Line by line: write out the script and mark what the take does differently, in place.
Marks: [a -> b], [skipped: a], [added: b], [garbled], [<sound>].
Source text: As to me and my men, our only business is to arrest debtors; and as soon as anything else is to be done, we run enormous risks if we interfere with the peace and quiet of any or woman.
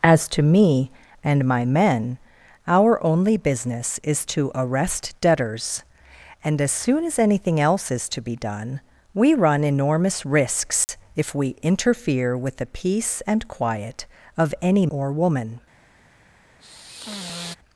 As to me and my men, our only business is to arrest debtors; and as soon as anything else is to be done, we run enormous risks [dropout] if we interfere with the peace and quiet of any or woman. [sigh]